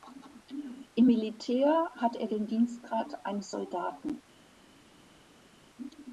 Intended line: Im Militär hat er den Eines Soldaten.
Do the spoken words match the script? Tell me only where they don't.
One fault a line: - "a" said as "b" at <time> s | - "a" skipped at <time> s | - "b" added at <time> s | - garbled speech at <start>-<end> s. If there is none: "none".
- "Dienstgrad" added at 2.5 s